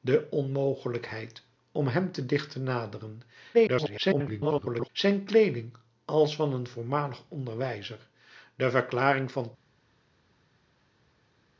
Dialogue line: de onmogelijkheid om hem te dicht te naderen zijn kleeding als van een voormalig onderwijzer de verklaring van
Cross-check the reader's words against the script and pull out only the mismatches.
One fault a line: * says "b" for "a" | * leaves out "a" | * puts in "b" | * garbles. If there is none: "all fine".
* garbles